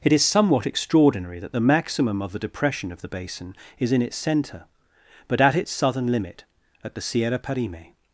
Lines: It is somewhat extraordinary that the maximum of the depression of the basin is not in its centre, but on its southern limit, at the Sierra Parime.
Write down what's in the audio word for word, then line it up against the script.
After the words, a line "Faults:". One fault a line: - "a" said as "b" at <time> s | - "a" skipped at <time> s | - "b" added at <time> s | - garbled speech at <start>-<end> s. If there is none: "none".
It is somewhat extraordinary that the maximum of the depression of the basin is in its centre, but at its southern limit, at the Sierra Parime.
Faults:
- "not" skipped at 3.9 s
- "on" said as "at" at 5.4 s